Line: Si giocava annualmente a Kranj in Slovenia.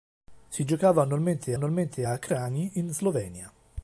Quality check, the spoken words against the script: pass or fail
fail